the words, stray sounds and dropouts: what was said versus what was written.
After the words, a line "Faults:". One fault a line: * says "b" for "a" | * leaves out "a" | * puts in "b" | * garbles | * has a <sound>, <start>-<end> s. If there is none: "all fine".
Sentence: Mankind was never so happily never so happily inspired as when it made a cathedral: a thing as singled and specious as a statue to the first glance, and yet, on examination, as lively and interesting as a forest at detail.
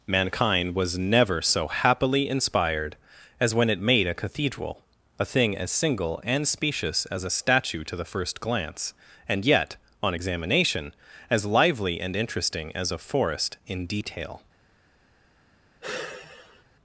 Mankind was never so happily inspired as when it made a cathedral: a thing as single and specious as a statue to the first glance, and yet, on examination, as lively and interesting as a forest in detail.
Faults:
* leaves out "never so happily"
* says "single" for "singled"
* says "in" for "at"
* has a sigh, 15.8-16.6 s